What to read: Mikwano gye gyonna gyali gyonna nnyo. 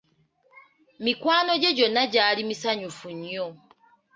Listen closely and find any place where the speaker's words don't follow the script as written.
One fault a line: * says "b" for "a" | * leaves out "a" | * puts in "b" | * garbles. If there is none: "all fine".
* says "misanyufu" for "gyonna"